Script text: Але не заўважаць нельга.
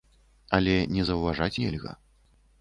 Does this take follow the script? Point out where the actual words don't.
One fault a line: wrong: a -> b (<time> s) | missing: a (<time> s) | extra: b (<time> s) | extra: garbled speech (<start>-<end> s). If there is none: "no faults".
no faults